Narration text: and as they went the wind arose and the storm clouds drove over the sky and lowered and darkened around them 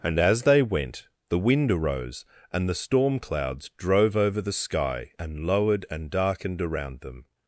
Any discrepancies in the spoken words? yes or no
no